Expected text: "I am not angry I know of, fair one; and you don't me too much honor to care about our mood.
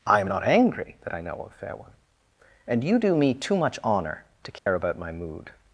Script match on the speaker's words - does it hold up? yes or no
no